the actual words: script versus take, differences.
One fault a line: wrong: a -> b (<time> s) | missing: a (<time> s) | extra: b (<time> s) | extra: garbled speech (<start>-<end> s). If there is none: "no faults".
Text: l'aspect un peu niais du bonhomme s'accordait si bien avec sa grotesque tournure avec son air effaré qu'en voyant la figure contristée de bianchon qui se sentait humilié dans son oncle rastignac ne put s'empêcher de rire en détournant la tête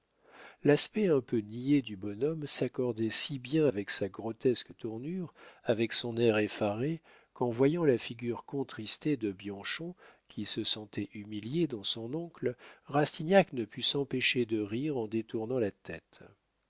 no faults